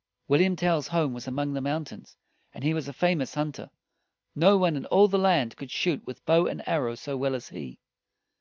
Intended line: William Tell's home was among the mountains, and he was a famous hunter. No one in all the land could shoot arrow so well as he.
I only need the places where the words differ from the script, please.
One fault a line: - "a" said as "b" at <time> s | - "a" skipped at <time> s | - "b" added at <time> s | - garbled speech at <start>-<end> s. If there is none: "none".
- "with bow and" added at 6.1 s